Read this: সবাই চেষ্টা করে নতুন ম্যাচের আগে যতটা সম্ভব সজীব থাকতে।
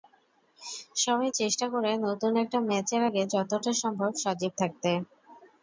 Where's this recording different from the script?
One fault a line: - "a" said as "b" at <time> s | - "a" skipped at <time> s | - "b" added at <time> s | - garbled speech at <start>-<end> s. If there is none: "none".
- "একটা" added at 2.4 s